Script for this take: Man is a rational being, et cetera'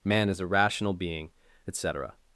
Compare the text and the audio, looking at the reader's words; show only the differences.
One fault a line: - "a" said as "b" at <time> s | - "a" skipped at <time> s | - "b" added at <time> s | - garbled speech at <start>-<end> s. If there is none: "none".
none